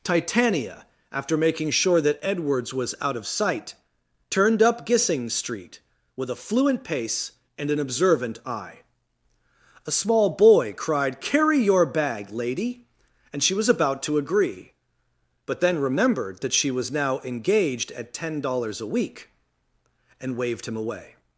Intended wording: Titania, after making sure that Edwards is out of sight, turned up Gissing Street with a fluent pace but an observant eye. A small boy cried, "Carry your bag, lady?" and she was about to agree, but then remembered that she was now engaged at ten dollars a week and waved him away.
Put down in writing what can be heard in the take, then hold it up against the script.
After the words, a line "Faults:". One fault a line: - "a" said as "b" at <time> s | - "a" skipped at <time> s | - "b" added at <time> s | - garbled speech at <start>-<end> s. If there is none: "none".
Titania, after making sure that Edwards was out of sight, turned up Gissing Street with a fluent pace and an observant eye. A small boy cried, "Carry your bag, lady?" and she was about to agree, but then remembered that she was now engaged at ten dollars a week and waved him away.
Faults:
- "is" said as "was" at 2.7 s
- "but" said as "and" at 7.5 s